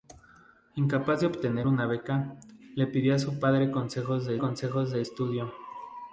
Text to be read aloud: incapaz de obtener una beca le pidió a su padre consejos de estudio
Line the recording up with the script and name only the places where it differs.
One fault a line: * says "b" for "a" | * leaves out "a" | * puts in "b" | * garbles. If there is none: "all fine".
* puts in "consejos de"